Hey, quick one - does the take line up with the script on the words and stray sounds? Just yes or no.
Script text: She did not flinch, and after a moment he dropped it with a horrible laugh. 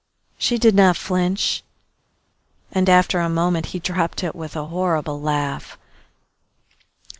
yes